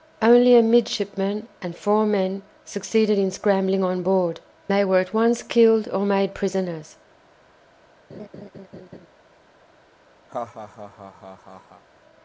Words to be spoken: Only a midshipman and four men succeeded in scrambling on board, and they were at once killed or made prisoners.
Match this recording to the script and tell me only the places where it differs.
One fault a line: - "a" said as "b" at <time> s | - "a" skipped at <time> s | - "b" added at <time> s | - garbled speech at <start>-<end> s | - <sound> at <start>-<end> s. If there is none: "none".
- "and" skipped at 4.4 s
- laugh at 8.1-9.1 s
- laugh at 10.3-11.8 s